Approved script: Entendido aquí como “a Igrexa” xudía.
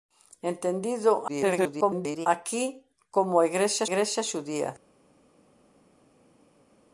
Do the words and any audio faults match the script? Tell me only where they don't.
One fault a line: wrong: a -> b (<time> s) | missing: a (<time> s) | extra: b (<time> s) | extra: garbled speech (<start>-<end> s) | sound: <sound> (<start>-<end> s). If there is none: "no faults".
extra: garbled speech (1.3-2.3 s)
extra: Igrexa (3.9 s)